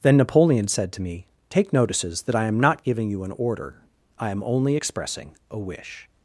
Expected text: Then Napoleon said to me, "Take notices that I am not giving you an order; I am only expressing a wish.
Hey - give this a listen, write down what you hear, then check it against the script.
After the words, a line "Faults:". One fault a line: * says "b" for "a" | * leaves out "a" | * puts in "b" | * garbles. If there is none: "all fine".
Then Napoleon said to me, "Take notices that I am not giving you an order; I am only expressing a wish.
Faults:
all fine